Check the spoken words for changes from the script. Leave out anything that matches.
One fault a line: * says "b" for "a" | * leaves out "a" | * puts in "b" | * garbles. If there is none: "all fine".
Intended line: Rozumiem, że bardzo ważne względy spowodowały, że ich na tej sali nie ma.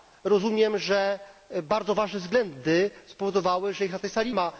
* leaves out "nie"